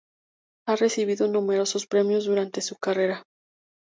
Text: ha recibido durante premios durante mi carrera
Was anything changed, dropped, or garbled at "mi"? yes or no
yes